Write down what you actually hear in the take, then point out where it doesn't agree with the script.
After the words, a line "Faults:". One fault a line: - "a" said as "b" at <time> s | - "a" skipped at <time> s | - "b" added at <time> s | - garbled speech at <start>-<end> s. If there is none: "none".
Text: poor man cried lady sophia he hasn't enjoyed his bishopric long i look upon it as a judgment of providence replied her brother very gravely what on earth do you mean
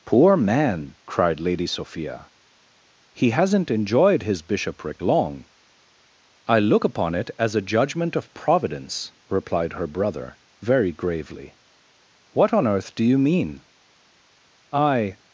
poor man cried lady sophia he hasn't enjoyed his bishopric long i look upon it as a judgment of providence replied her brother very gravely what on earth do you mean i
Faults:
- "i" added at 14.7 s